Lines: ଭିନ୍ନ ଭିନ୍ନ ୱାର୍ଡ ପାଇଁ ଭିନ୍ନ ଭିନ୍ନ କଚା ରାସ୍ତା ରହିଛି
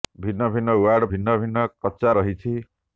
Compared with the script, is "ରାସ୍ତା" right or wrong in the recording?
wrong